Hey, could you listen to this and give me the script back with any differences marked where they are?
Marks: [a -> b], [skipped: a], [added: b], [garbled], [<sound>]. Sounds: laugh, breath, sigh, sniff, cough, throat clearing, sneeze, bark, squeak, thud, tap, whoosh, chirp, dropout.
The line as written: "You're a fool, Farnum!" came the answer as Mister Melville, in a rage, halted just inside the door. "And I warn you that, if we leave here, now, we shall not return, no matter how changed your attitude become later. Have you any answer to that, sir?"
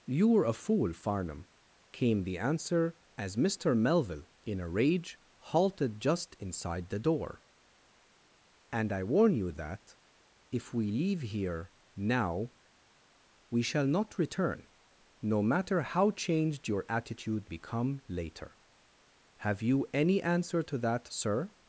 "You're a fool, Farnum!" came the answer as Mister Melville, in a rage, halted just inside the door. "And I warn you that, if we leave here, now, we shall not return, no matter how changed your attitude become later. Have you any answer to that, sir?"